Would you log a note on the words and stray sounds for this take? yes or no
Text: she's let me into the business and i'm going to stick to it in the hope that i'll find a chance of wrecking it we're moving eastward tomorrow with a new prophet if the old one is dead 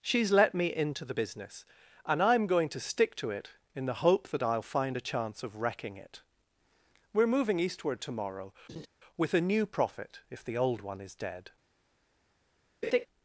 yes